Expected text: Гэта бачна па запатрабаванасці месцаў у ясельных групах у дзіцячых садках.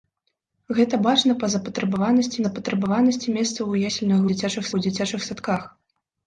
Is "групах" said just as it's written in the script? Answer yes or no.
no